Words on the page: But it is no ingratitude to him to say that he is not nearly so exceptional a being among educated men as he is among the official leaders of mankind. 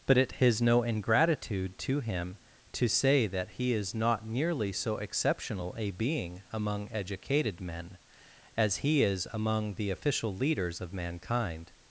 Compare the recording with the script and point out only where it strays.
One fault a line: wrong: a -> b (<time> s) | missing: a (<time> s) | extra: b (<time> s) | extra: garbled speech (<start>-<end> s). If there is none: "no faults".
no faults